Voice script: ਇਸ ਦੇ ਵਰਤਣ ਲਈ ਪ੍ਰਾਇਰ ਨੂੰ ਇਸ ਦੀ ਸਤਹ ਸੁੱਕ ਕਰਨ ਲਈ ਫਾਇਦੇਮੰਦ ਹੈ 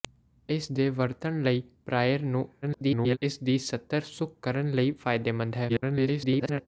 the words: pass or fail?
fail